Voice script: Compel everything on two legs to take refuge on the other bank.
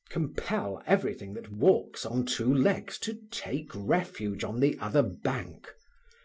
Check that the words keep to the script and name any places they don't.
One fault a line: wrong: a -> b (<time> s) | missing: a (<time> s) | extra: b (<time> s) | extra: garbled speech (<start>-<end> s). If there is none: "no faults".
extra: that walks (1.4 s)